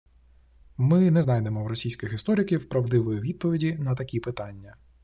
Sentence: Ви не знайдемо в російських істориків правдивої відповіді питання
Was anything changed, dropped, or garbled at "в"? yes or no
no